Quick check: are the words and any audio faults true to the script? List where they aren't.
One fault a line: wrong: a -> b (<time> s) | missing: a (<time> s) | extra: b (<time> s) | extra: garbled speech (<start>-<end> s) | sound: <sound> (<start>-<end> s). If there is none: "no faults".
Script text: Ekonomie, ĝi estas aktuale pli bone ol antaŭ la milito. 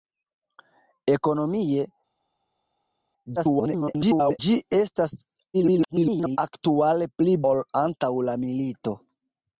extra: garbled speech (3.4-4.4 s)
extra: garbled speech (5.5-6.4 s)
missing: bone (7.3 s)